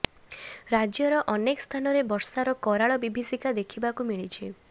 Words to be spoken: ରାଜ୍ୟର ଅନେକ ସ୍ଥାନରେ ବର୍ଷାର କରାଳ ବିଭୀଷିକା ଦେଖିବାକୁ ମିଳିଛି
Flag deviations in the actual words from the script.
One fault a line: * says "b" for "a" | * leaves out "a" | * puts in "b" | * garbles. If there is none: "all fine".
all fine